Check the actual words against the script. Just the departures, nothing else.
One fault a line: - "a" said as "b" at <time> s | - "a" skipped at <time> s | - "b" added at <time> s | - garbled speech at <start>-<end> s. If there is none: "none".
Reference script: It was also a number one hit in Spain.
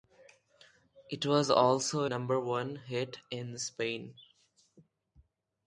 - "a" skipped at 2.0 s